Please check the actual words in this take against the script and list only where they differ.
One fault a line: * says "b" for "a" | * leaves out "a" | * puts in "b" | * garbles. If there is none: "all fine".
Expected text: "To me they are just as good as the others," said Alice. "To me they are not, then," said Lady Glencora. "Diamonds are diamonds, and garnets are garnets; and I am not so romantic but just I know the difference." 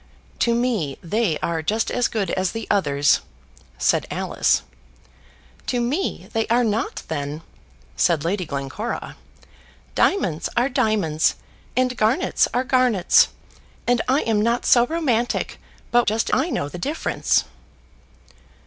all fine